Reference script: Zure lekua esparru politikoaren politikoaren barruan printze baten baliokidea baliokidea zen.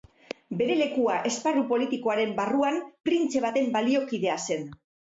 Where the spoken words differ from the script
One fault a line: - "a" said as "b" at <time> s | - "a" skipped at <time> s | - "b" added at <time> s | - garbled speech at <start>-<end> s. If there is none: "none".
- "Zure" said as "Bere" at 0.6 s
- "politikoaren" skipped at 2.4 s
- "baliokidea" skipped at 4.4 s